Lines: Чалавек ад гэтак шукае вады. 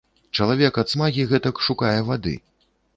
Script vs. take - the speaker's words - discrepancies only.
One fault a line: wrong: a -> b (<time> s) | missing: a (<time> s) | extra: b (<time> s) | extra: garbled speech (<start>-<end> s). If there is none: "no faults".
extra: смагі (0.9 s)